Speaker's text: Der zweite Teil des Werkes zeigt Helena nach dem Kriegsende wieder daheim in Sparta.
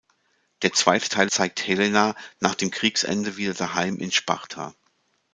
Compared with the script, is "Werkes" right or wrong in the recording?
wrong